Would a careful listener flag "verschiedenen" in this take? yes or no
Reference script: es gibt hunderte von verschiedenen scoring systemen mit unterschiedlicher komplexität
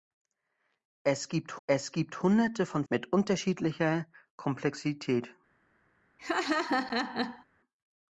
yes